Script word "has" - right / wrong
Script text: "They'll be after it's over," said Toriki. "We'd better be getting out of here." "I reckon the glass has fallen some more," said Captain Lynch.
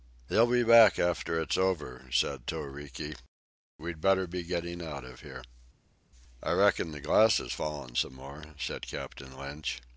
right